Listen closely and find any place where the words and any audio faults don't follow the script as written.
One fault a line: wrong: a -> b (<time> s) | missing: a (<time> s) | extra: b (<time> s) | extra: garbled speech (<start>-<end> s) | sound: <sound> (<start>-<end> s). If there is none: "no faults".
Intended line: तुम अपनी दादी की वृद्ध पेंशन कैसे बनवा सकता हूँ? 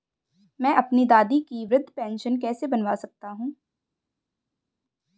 wrong: तुम -> मैं (0.6 s)